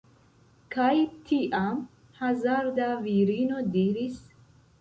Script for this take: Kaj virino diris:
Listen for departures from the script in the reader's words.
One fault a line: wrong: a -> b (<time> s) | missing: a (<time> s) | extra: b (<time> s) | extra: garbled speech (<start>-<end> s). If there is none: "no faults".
extra: tiam hazarda (1.3 s)